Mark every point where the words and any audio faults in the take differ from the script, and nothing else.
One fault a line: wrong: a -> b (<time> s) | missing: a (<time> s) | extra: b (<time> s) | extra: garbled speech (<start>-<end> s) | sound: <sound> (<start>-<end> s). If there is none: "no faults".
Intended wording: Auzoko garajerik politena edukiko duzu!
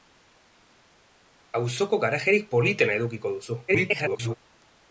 extra: garbled speech (3.7-4.4 s)